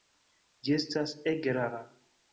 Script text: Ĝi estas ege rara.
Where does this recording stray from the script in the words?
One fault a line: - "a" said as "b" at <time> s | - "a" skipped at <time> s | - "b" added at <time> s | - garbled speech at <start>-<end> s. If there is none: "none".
none